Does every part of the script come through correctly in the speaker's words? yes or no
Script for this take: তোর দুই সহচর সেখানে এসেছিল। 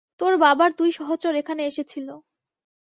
no